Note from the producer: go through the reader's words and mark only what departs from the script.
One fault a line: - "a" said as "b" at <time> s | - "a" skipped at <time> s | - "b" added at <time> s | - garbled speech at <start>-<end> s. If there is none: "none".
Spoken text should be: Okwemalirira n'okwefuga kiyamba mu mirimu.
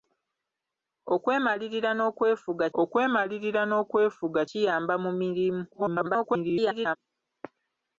- "okwemalirira n'okwefuga" added at 2.8 s
- garbled speech at 5.7-7.0 s